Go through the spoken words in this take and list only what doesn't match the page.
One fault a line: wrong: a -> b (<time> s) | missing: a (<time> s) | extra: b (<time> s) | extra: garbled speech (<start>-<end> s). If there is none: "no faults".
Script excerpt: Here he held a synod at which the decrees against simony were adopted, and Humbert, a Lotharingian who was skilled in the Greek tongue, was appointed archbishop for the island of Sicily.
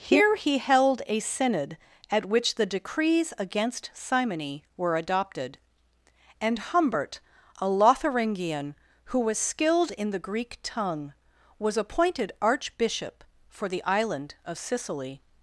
no faults